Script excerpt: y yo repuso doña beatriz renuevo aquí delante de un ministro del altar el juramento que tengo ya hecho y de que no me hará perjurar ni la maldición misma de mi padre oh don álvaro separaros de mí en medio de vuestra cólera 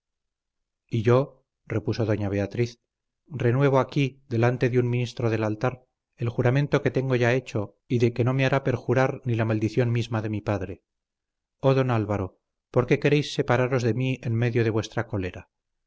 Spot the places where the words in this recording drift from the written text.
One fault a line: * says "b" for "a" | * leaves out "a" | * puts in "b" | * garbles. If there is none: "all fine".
* puts in "por qué queréis"